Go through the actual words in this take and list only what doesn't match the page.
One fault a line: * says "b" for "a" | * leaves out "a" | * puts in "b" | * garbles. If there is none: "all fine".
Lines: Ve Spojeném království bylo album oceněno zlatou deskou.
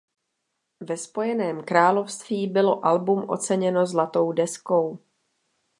all fine